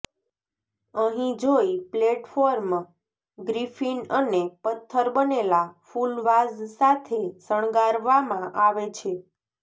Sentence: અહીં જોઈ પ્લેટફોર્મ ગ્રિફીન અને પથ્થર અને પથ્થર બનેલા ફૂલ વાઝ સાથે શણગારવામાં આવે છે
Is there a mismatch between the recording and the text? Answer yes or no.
yes